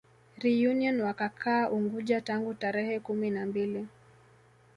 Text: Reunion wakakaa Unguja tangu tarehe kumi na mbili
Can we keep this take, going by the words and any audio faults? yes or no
yes